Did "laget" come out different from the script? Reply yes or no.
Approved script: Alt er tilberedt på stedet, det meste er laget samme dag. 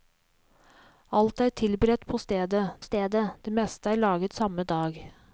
no